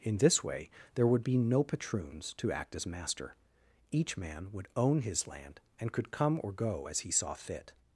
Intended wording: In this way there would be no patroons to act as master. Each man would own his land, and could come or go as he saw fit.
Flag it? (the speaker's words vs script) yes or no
no